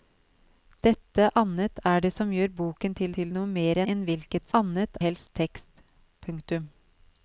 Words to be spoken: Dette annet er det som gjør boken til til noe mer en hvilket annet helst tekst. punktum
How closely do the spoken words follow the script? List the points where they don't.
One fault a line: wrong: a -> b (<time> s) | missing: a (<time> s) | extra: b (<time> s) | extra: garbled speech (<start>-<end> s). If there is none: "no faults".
no faults